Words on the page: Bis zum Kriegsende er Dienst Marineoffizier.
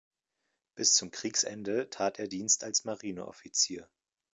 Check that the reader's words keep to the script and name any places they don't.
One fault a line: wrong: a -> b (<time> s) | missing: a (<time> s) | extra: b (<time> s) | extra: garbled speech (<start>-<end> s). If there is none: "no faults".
extra: tat (1.9 s)
extra: als (2.6 s)